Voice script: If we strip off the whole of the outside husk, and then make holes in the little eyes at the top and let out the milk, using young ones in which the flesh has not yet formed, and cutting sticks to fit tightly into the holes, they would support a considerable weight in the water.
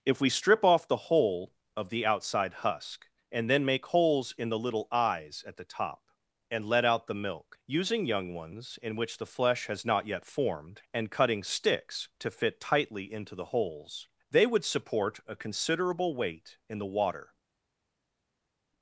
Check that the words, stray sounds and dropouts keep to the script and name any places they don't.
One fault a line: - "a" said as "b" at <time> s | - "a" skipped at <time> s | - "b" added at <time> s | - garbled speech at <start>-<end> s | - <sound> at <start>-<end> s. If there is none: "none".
none